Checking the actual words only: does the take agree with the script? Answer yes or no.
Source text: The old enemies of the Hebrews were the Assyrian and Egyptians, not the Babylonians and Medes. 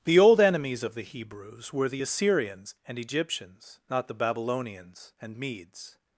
no